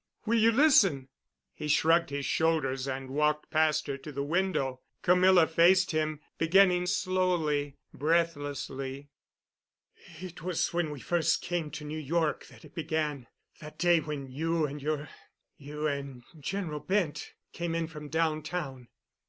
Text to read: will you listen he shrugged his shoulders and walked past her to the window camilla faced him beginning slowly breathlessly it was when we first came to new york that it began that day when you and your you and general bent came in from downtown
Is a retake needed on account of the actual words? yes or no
no